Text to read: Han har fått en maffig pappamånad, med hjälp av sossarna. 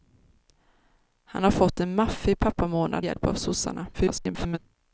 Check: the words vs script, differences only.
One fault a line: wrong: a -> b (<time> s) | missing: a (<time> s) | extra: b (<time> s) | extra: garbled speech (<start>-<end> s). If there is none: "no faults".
missing: med (3.0 s)
extra: garbled speech (3.9-4.6 s)